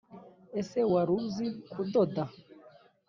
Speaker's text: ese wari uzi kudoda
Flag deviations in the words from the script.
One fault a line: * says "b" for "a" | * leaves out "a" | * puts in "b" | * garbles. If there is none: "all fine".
all fine